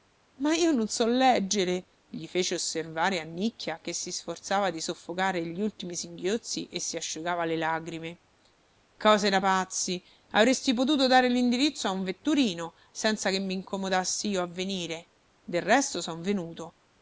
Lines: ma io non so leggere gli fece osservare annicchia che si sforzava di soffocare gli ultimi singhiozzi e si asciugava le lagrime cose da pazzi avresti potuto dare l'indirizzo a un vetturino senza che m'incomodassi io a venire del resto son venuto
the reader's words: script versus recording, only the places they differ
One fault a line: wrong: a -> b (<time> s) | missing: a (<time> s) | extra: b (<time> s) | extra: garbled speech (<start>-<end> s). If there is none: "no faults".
no faults